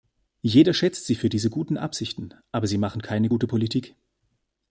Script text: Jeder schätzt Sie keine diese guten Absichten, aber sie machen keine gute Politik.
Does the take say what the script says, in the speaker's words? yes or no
no